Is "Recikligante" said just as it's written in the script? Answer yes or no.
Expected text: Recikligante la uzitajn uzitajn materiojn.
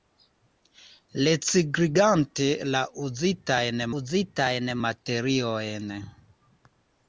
yes